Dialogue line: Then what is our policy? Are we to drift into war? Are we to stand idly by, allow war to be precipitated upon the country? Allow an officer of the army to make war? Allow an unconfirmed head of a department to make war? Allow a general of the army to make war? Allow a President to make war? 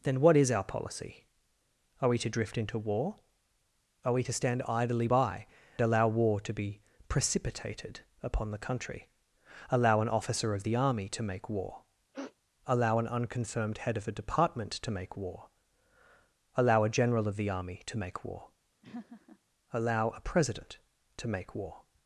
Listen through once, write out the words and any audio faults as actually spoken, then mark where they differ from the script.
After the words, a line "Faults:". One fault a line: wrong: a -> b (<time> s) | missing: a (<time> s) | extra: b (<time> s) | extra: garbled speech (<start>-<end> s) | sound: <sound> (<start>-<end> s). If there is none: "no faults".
Then what is our policy? Are we to drift into war? Are we to stand idly by, allow war to be precipitated upon the country? Allow an officer of the army to make war? Allow an unconfirmed head of a department to make war? Allow a general of the army to make war? Allow a President to make war?
Faults:
sound: sniff (12.1-12.3 s)
sound: laugh (18.8-19.4 s)